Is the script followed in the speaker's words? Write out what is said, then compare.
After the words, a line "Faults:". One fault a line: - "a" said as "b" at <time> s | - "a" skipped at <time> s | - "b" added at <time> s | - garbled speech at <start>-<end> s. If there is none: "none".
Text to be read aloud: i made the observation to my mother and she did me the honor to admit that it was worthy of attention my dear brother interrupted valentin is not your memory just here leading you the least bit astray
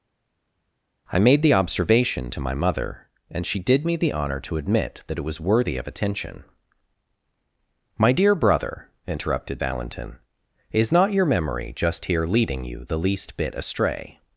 i made the observation to my mother and she did me the honor to admit that it was worthy of attention my dear brother interrupted valentin is not your memory just here leading you the least bit astray
Faults:
none